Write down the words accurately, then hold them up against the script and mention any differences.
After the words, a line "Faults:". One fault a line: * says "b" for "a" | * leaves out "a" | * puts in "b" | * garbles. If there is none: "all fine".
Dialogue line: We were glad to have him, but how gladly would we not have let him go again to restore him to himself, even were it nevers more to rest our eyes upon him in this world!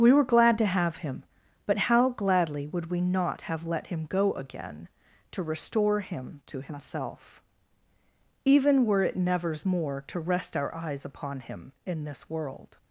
We were glad to have him, but how gladly would we not have let him go again to restore him to himself, even were it nevers more to rest our eyes upon him in this world!
Faults:
all fine